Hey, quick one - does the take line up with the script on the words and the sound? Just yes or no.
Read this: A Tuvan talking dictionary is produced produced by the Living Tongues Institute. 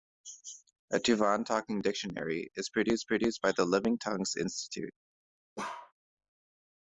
no